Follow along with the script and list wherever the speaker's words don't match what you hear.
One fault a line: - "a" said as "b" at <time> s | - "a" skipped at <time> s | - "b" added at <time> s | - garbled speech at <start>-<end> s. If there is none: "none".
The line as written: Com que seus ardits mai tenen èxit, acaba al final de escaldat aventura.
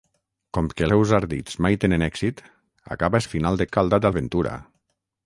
none